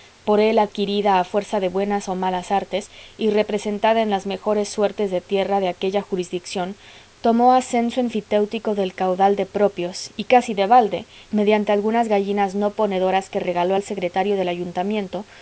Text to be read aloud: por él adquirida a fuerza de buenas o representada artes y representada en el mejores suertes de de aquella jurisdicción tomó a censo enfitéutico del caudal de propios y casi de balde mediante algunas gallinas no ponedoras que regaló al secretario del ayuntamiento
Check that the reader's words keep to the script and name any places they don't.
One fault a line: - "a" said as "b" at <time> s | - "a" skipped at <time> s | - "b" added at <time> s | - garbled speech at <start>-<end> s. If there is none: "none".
- "representada" said as "malas" at 2.1 s
- "el" said as "las" at 4.1 s
- "tierra" added at 5.2 s